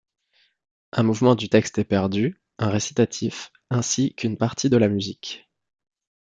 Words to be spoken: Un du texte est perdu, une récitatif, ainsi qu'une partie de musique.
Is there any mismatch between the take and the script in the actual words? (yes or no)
yes